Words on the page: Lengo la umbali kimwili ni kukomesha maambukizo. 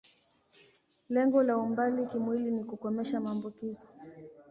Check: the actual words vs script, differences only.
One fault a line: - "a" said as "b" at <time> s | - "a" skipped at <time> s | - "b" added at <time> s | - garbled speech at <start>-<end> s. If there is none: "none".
none